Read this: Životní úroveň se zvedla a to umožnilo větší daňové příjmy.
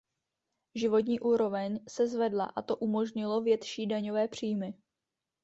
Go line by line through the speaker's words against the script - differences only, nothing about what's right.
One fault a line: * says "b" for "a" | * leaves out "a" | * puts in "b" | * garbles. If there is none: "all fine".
all fine